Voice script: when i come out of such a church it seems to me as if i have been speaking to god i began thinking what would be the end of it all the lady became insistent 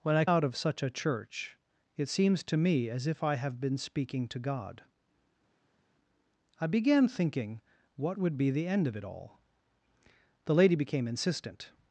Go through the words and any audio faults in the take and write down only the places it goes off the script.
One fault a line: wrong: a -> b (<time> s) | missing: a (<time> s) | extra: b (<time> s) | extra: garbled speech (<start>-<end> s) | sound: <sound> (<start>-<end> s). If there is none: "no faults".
missing: come (0.2 s)